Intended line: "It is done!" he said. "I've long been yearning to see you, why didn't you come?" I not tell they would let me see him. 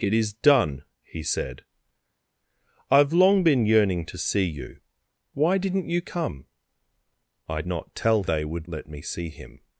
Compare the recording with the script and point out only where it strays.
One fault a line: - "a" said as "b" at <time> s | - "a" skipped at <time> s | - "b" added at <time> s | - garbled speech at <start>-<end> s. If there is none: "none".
none